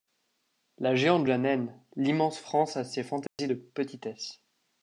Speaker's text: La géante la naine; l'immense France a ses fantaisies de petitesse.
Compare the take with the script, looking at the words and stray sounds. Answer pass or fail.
fail